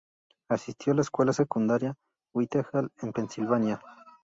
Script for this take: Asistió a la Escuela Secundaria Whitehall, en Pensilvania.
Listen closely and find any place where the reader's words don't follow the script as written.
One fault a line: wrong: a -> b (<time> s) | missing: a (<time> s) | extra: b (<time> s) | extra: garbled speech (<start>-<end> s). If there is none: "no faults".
no faults